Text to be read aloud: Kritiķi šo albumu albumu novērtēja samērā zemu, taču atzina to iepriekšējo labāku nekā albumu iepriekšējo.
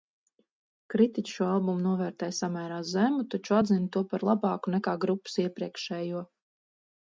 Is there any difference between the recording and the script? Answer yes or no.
yes